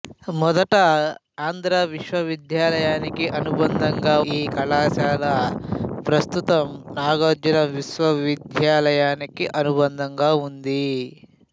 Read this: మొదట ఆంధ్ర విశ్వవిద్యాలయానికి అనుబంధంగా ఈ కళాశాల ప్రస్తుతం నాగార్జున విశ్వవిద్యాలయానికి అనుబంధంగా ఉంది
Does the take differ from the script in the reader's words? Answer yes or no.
no